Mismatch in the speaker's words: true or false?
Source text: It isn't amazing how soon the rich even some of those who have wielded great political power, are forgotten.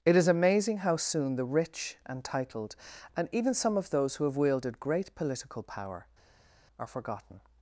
true